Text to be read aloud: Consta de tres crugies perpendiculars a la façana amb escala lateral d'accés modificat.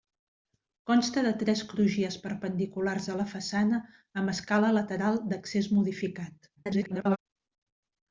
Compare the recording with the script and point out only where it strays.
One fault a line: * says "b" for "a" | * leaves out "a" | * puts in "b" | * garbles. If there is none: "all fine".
* garbles